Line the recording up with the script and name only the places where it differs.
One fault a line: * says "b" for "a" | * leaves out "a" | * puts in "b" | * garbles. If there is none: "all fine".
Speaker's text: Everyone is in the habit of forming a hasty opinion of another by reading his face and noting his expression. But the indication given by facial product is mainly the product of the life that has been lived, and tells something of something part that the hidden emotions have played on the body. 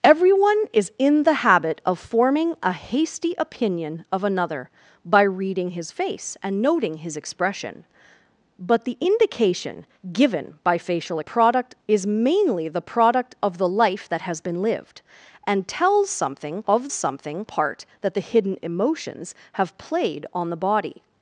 all fine